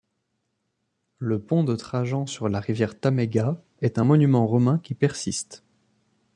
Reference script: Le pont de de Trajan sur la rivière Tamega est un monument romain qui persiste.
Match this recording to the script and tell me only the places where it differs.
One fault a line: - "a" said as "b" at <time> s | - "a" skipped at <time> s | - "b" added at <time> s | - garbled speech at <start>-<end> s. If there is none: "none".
- "de" skipped at 1.8 s